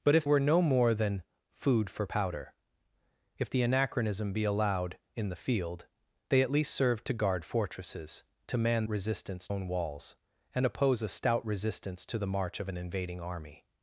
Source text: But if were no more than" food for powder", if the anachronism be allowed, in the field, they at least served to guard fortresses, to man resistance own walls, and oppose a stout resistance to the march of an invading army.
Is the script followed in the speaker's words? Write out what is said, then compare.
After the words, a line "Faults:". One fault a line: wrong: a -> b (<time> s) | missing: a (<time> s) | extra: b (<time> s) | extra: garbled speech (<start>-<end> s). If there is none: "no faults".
But if were no more than" food for powder", if the anachronism be allowed, in the field, they at least served to guard fortresses, to man resistance own walls, and oppose a stout resistance to the march of an invading army.
Faults:
no faults